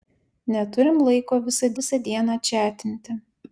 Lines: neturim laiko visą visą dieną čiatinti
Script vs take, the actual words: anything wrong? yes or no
no